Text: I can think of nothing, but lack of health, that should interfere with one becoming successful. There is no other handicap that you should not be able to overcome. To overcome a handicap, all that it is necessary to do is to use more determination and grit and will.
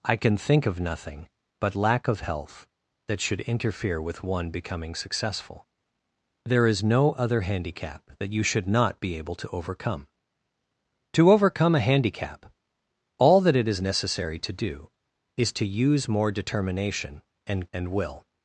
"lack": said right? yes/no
yes